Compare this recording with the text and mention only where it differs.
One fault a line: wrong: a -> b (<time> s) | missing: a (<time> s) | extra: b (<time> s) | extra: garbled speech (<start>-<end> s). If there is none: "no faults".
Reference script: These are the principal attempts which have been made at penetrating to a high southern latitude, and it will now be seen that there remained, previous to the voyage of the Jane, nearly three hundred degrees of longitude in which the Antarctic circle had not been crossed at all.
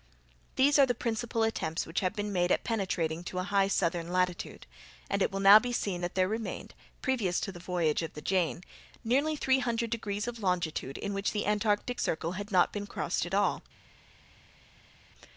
no faults